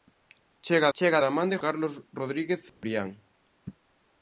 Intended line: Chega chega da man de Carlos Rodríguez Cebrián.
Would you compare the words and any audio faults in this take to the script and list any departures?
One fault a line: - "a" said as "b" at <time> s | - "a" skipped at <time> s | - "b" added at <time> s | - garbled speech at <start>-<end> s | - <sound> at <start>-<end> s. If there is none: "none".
- dropout at 2.7-2.8 s